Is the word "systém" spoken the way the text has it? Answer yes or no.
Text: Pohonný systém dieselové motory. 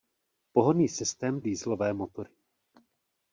yes